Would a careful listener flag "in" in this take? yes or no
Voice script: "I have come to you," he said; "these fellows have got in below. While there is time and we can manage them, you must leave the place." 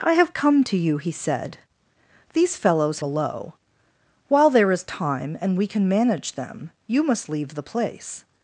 yes